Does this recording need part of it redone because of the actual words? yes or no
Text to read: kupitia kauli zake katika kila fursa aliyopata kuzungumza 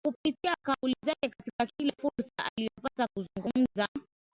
no